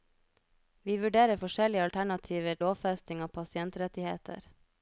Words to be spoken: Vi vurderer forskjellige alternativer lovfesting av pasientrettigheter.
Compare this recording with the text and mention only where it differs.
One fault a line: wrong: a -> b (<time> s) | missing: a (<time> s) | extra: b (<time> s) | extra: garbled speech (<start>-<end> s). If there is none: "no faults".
no faults